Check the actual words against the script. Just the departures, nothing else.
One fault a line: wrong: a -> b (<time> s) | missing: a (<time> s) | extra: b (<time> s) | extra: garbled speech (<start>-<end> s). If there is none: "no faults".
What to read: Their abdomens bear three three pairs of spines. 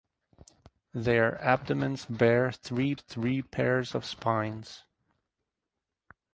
no faults